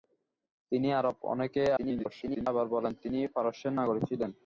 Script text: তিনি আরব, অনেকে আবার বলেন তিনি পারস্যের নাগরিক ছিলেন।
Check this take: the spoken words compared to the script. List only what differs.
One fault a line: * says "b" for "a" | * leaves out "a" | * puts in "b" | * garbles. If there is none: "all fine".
* garbles